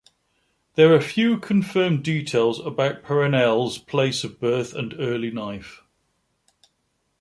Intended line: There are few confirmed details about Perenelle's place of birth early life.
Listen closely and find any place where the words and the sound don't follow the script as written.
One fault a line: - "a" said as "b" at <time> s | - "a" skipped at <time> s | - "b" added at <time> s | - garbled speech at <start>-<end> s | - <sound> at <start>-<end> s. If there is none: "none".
- "and" added at 4.7 s